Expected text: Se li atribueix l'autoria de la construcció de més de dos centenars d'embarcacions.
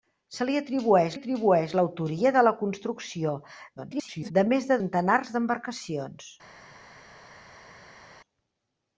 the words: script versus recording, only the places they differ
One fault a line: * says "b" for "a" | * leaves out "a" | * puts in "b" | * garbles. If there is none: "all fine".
* puts in "atribueix"
* garbles
* leaves out "dos"